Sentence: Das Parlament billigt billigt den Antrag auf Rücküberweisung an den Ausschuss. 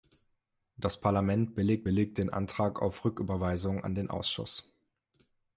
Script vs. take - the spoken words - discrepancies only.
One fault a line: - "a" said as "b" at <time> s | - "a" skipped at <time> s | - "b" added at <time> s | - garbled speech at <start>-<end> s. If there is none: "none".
none